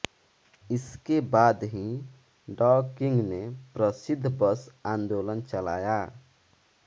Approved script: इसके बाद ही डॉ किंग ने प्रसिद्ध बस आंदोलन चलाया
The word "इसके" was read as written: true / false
true